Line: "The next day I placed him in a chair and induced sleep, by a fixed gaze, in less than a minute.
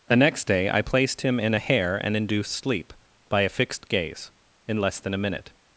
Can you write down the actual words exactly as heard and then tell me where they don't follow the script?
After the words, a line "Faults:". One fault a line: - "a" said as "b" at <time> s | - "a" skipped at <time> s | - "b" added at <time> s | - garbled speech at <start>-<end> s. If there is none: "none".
"The next day I placed him in a hair and induced sleep, by a fixed gaze, in less than a minute.
Faults:
- "chair" said as "hair" at 1.6 s